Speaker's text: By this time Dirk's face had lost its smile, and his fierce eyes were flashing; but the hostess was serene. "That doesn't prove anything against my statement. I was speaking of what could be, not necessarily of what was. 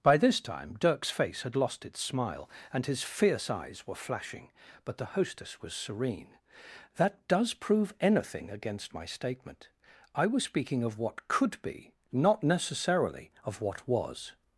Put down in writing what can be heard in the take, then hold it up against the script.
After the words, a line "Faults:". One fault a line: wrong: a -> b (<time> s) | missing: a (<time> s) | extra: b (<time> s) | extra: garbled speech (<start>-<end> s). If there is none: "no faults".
By this time Dirk's face had lost its smile, and his fierce eyes were flashing; but the hostess was serene. "That does prove anything against my statement. I was speaking of what could be, not necessarily of what was.
Faults:
wrong: doesn't -> does (7.3 s)